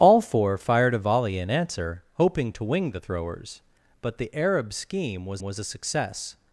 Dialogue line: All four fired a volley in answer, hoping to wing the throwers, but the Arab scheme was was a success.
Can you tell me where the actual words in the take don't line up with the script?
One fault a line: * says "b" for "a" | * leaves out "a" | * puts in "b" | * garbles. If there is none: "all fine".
all fine